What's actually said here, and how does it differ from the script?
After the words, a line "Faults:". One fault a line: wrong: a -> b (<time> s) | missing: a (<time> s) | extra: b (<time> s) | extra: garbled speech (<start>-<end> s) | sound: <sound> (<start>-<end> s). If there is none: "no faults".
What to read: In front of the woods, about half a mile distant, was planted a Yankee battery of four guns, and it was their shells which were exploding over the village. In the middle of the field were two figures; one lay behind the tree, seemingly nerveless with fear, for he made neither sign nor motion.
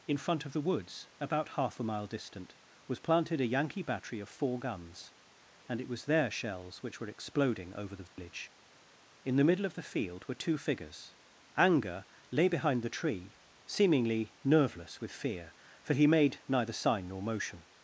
In front of the woods, about half a mile distant, was planted a Yankee battery of four guns, and it was their shells which were exploding over the village. In the middle of the field were two figures; anger lay behind the tree, seemingly nerveless with fear, for he made neither sign nor motion.
Faults:
sound: dropout (8.1-8.2 s)
wrong: one -> anger (11.6 s)